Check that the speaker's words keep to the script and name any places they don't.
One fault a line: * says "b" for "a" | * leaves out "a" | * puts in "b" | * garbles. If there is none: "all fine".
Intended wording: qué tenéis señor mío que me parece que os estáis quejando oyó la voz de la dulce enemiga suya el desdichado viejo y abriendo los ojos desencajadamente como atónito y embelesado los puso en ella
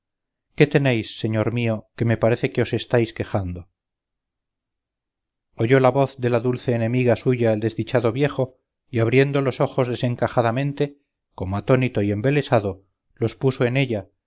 all fine